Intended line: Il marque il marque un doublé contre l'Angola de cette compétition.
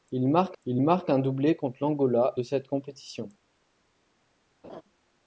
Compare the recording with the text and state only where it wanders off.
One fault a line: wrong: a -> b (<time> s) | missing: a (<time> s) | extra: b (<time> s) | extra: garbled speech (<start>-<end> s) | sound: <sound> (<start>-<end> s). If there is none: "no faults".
sound: laugh (4.6-4.8 s)